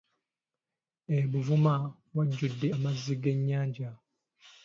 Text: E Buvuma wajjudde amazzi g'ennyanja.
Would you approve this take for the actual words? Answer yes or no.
yes